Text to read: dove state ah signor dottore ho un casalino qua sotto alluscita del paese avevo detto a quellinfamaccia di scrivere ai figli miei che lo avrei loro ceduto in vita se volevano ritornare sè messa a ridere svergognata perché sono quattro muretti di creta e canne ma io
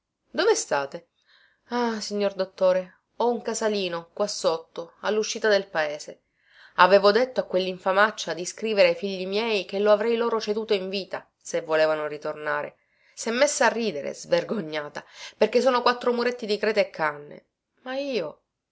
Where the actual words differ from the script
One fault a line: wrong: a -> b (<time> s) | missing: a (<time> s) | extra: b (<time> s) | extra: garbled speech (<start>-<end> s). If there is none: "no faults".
no faults